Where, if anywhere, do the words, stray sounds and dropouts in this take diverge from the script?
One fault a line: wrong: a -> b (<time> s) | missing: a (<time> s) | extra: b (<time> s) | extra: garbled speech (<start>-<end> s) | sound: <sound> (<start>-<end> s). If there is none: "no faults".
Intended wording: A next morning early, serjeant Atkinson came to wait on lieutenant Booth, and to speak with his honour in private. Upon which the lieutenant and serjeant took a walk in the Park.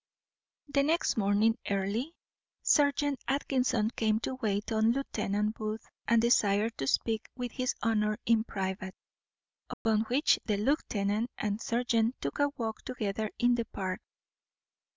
wrong: A -> The (0.7 s)
extra: desired (6.2 s)
sound: dropout (9.7-9.9 s)
extra: together (12.8 s)